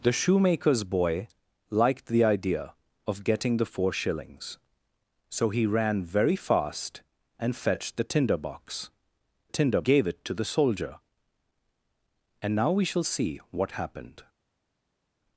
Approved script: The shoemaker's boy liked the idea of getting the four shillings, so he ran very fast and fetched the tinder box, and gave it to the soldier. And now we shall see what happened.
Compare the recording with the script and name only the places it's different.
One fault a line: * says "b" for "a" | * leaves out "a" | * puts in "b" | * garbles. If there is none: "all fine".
* says "tinder" for "and"